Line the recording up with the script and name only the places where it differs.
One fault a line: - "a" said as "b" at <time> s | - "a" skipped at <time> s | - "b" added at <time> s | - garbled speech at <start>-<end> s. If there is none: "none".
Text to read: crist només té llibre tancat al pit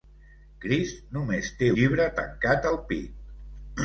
none